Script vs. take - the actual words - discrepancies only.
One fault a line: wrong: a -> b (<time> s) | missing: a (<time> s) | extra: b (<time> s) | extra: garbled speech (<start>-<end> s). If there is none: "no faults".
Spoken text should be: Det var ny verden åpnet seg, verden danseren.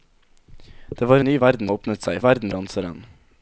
no faults